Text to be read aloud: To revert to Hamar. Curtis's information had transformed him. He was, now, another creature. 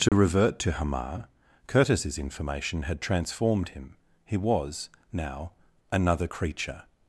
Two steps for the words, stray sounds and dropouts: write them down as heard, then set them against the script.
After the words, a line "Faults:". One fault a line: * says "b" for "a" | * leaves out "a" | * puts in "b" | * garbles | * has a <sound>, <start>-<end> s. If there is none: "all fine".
To revert to Hamar. Curtis's information had transformed him. He was, now, another creature.
Faults:
* has a dropout, 0.1-0.1 s